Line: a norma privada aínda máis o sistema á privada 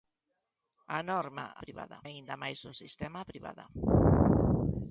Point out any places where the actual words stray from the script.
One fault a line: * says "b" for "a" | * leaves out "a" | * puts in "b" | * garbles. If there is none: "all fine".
all fine